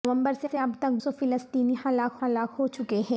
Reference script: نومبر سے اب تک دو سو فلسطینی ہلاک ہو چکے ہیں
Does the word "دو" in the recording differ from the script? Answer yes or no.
yes